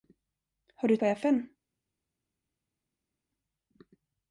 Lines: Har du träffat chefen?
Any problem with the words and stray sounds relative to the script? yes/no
yes